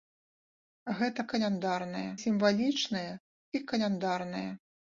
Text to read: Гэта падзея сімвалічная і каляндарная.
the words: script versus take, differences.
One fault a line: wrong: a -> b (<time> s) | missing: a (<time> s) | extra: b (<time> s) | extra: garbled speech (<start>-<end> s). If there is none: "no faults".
wrong: падзея -> каляндарная (1.3 s)